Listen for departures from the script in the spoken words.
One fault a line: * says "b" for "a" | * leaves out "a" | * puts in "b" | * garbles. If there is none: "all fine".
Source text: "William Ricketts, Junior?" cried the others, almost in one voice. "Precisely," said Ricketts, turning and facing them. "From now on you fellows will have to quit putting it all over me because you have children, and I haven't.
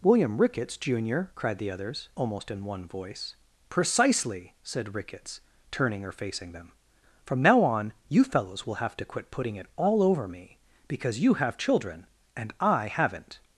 * says "or" for "and"